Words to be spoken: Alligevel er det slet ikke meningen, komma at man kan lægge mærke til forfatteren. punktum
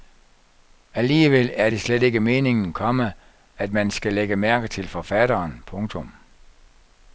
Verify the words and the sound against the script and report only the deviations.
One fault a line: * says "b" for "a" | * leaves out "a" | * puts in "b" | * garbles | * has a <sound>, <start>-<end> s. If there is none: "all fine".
* says "skal" for "kan"